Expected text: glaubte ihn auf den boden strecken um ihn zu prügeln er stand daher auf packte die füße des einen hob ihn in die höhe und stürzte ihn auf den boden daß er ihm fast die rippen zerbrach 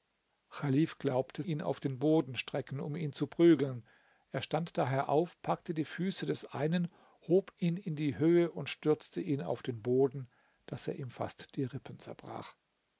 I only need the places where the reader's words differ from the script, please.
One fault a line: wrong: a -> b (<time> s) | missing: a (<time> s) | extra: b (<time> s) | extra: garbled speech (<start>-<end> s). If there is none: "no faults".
no faults